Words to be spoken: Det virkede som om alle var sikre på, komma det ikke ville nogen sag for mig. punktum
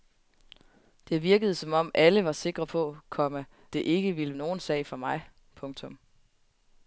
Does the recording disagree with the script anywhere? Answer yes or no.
no